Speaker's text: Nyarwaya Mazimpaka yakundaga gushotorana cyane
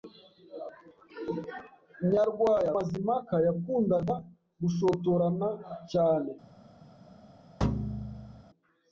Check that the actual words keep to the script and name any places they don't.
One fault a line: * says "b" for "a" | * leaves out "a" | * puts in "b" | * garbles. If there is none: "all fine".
all fine